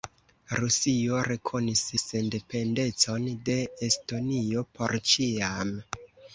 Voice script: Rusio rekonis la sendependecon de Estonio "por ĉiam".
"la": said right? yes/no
no